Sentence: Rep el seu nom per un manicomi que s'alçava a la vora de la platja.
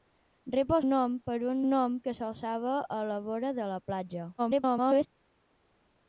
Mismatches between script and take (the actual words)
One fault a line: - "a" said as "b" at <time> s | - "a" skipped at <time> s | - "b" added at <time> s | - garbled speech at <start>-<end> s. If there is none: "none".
- "seu" skipped at 0.8 s
- "manicomi" said as "nom" at 1.7 s
- garbled speech at 4.4-5.1 s